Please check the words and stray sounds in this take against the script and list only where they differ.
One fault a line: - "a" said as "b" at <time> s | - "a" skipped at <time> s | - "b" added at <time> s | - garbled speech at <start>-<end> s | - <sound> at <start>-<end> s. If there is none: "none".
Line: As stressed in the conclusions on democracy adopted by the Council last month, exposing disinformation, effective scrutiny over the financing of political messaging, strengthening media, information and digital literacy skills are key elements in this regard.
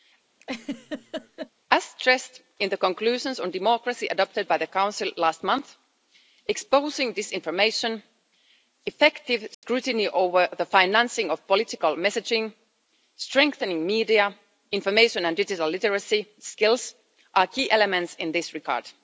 - laugh at 0.4-1.5 s
- dropout at 9.5-9.6 s